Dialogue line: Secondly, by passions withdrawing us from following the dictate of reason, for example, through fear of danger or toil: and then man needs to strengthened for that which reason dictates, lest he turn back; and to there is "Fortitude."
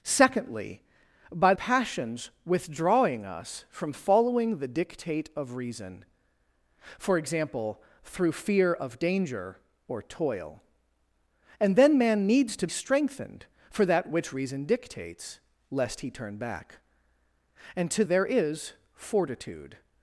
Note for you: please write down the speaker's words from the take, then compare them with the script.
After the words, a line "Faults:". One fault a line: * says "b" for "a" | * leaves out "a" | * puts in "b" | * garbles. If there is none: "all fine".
Secondly, by passions withdrawing us from following the dictate of reason, for example, through fear of danger or toil: and then man needs to strengthened for that which reason dictates, lest he turn back; and to there is "Fortitude."
Faults:
all fine